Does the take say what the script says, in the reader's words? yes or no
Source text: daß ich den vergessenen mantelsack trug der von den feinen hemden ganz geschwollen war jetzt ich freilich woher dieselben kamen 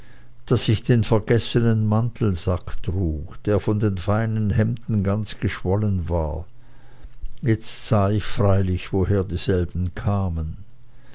no